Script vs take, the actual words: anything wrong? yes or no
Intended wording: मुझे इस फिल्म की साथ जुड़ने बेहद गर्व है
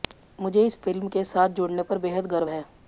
yes